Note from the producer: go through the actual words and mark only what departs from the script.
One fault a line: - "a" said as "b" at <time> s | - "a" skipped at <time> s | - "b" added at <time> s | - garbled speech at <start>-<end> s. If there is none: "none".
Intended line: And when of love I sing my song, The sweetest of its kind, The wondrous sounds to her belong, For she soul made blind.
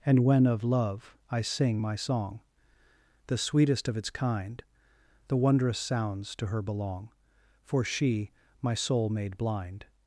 - "my" added at 8.6 s